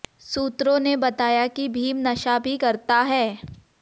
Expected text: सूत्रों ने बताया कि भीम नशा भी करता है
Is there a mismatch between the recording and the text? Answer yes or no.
no